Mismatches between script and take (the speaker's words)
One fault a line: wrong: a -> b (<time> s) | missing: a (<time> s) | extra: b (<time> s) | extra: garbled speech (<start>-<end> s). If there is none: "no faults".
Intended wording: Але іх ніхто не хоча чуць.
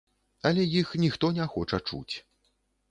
no faults